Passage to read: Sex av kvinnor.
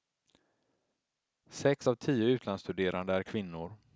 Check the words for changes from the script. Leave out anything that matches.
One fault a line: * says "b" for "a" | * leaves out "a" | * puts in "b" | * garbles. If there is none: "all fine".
* puts in "tio utlandsstuderande är"